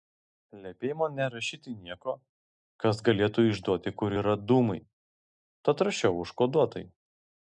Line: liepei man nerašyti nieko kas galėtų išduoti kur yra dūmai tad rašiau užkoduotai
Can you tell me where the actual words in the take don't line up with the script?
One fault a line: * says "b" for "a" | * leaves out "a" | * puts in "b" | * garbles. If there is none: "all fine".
all fine